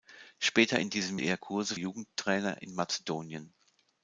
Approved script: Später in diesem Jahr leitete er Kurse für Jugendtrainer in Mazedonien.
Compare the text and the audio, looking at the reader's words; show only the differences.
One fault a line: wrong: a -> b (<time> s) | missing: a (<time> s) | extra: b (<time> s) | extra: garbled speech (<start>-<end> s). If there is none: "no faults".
missing: Jahr leitete (1.2 s)
missing: für (1.7 s)